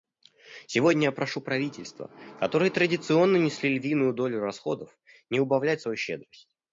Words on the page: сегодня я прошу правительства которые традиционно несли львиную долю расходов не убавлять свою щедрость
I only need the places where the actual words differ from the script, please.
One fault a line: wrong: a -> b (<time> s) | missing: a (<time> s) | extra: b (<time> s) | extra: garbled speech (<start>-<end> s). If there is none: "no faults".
no faults